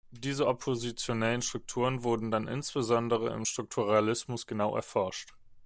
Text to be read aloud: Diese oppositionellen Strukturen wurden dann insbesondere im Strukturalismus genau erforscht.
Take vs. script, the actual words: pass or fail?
pass